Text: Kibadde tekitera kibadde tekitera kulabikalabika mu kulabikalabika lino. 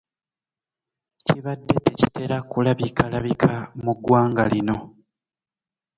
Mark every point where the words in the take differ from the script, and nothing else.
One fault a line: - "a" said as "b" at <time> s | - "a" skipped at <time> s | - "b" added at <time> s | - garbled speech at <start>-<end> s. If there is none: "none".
- "kibadde tekitera" skipped at 2.4 s
- "kulabikalabika" said as "ggwanga" at 4.0 s